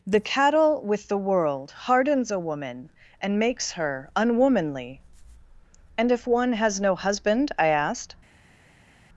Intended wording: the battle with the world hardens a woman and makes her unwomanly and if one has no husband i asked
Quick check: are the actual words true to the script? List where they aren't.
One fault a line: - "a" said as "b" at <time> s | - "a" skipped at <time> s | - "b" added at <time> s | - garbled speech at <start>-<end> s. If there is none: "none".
- "battle" said as "cattle" at 0.2 s